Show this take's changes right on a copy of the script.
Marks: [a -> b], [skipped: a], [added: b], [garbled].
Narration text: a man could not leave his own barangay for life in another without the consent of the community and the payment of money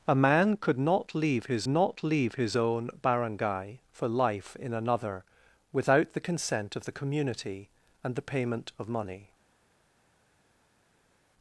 a man could not leave his [added: not leave his] own barangay for life in another without the consent of the community and the payment of money